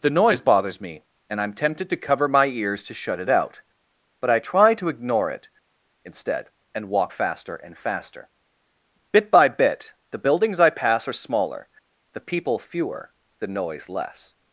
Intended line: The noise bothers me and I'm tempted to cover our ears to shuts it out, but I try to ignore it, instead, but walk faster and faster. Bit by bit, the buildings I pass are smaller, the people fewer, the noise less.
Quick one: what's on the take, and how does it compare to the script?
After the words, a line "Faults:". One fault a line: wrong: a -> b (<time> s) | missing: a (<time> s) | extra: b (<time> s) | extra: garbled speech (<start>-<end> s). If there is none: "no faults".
The noise bothers me and I'm tempted to cover my ears to shut it out, but I try to ignore it, instead, and walk faster and faster. Bit by bit, the buildings I pass are smaller, the people fewer, the noise less.
Faults:
wrong: our -> my (2.3 s)
wrong: shuts -> shut (2.9 s)
wrong: but -> and (6.8 s)